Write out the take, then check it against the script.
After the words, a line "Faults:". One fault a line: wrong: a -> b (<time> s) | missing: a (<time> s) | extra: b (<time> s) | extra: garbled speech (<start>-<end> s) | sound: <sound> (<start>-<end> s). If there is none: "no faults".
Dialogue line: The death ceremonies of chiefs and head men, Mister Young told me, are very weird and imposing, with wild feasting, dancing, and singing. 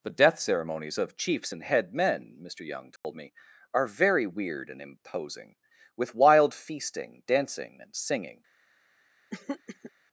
The death ceremonies of chiefs and head men, Mister Young told me, are very weird and imposing, with wild feasting, dancing, and singing.
Faults:
sound: dropout (3.0-3.0 s)
sound: throat clearing (9.3-9.9 s)